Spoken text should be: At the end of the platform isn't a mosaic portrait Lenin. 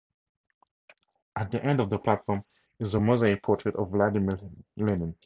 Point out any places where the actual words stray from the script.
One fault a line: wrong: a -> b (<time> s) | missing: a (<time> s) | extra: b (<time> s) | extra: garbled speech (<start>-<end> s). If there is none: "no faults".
wrong: isn't -> is (2.8 s)
extra: of Vladimir (3.8 s)